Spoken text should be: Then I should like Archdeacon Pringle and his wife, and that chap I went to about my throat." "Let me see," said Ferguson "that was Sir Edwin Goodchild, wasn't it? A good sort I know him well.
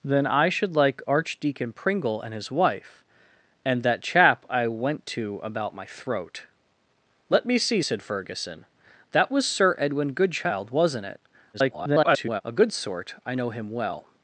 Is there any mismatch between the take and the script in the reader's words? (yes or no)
yes